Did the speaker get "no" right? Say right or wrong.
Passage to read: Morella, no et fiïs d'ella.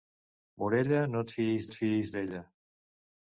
right